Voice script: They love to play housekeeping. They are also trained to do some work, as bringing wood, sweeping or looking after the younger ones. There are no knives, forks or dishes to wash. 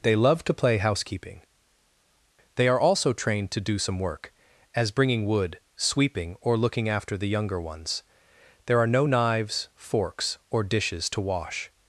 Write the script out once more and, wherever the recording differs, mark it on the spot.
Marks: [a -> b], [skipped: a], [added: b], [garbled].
They love to play housekeeping. They are also trained to do some work, as bringing wood, sweeping or looking after the younger ones. There are no knives, forks or dishes to wash.